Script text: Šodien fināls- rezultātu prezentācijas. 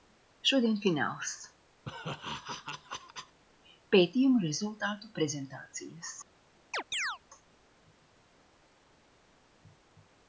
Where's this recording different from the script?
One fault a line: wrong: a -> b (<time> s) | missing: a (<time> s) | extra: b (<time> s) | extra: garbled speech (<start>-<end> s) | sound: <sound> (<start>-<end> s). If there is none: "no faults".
sound: laugh (1.8-3.4 s)
extra: pētījumu (3.9 s)
sound: chirp (6.7-7.2 s)